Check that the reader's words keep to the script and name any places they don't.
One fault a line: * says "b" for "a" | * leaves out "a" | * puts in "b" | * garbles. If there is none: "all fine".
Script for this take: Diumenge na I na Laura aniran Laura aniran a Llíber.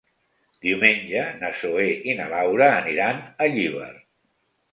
* puts in "Zoè"
* leaves out "Laura aniran"